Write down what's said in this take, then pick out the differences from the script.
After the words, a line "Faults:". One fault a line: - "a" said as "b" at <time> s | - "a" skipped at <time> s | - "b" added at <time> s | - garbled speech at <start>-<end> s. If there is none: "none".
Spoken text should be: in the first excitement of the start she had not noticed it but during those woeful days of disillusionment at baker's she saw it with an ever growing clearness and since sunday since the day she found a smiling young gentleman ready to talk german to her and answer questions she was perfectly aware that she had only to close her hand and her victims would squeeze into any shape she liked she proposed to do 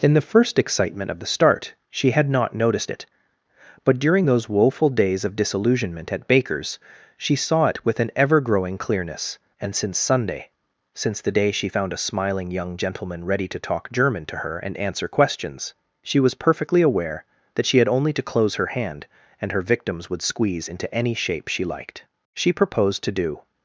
in the first excitement of the start she had not noticed it but during those woeful days of disillusionment at baker's she saw it with an ever growing clearness and since sunday since the day she found a smiling young gentleman ready to talk german to her and answer questions she was perfectly aware that she had only to close her hand and her victims would squeeze into any shape she liked she proposed to do
Faults:
none